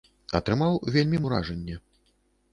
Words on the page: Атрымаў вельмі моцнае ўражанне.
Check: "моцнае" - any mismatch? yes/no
yes